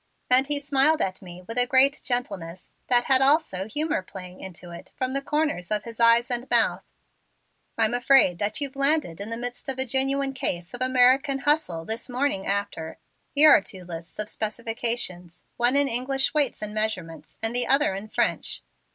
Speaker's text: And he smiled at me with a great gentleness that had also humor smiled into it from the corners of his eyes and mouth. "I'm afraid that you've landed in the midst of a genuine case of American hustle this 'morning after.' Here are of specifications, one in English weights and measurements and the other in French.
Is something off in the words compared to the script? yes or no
yes